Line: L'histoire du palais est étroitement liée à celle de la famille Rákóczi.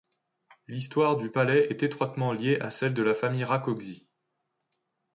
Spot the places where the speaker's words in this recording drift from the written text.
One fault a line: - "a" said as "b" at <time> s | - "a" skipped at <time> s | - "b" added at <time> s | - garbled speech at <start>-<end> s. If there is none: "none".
none